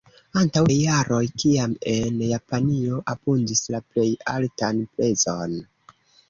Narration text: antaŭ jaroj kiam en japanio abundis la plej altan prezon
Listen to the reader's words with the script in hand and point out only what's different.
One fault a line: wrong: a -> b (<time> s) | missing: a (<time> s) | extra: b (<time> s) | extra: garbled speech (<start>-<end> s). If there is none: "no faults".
no faults